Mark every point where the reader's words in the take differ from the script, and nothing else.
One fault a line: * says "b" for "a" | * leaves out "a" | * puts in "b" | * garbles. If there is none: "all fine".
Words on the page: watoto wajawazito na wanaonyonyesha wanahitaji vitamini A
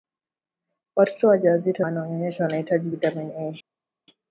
* leaves out "na"